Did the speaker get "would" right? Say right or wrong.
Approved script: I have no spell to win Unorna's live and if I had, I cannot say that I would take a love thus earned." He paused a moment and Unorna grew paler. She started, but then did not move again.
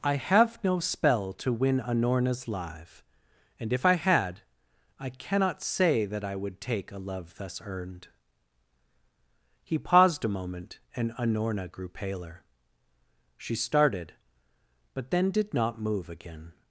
right